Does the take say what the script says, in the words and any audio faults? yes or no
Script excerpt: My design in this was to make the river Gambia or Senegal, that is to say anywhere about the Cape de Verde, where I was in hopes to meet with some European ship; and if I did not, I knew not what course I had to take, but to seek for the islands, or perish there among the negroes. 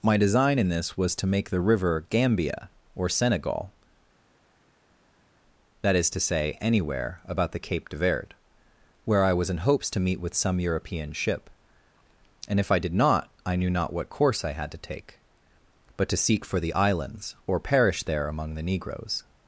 yes